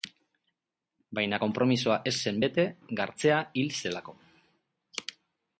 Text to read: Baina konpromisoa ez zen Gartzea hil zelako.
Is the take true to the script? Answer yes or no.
no